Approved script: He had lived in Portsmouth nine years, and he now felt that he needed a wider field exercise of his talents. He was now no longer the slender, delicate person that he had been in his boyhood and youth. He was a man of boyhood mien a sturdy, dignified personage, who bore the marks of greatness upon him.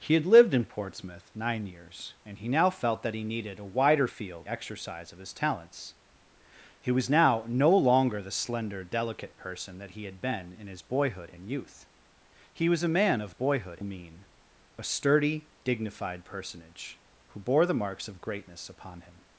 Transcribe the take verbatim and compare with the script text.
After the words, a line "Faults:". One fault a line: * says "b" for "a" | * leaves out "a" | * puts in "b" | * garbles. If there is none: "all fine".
He had lived in Portsmouth nine years, and he now felt that he needed a wider field exercise of his talents. He was now no longer the slender, delicate person that he had been in his boyhood and youth. He was a man of boyhood mien a sturdy, dignified personage, who bore the marks of greatness upon him.
Faults:
all fine